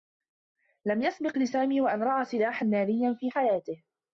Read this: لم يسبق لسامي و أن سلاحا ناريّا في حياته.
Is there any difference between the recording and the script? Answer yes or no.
yes